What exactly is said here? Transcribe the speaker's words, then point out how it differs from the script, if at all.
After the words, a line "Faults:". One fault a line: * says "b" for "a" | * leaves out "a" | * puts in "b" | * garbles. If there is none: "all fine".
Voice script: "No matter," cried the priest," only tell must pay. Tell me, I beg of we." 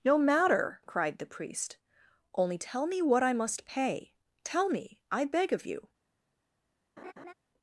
"No matter," cried the priest," only tell me what I must pay. Tell me, I beg of you."
Faults:
* puts in "me what I"
* says "you" for "we"